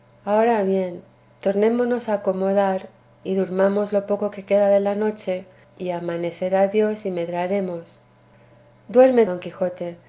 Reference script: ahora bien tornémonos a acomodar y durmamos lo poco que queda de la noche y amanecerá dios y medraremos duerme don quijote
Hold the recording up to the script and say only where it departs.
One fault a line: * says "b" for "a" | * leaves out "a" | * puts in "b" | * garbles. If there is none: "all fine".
all fine